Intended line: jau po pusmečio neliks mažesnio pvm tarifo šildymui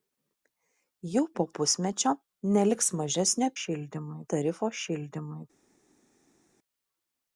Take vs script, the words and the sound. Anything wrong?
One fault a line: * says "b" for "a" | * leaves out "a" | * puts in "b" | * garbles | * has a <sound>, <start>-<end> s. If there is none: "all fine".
* says "šildymui" for "pvm"